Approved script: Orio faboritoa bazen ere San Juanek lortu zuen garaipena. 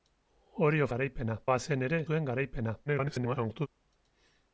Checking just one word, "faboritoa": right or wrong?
wrong